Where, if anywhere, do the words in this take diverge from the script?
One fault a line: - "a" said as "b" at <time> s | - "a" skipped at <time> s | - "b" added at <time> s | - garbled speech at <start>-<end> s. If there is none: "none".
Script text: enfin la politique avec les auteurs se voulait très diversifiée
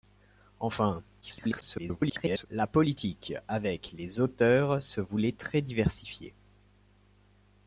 - garbled speech at 1.2-2.5 s